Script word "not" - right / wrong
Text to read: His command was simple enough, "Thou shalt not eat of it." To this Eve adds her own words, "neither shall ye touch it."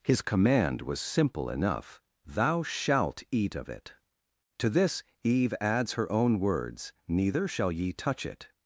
wrong